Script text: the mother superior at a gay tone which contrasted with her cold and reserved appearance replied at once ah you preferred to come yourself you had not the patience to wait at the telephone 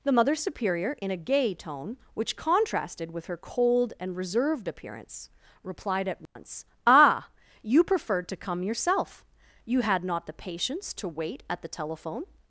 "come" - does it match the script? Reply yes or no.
yes